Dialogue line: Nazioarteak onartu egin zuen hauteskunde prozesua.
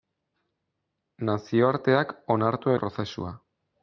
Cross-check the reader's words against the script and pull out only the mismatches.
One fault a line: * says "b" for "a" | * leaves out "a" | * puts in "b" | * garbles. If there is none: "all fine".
* leaves out "egin zuen hauteskunde"